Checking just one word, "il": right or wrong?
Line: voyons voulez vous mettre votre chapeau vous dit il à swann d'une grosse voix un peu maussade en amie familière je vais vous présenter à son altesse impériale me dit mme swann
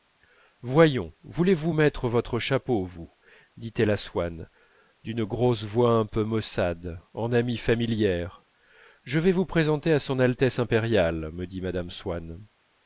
wrong